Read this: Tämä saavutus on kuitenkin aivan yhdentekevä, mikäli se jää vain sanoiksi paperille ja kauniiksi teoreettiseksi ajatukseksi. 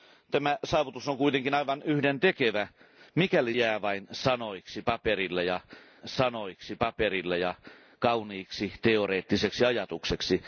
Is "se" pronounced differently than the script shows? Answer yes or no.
yes